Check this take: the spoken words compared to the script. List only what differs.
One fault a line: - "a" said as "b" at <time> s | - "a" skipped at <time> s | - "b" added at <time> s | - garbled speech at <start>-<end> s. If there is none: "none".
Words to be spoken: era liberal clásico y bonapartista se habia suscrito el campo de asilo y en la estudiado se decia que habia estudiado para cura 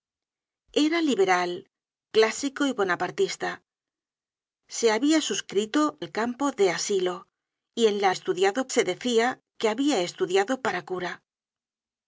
none